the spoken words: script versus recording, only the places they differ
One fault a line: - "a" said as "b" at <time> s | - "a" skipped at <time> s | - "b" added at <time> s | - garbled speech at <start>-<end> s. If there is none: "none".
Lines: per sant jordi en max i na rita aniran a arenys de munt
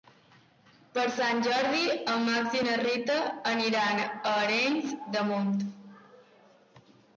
none